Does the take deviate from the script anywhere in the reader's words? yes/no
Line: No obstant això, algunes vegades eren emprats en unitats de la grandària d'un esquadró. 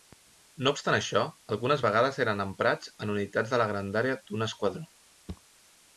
no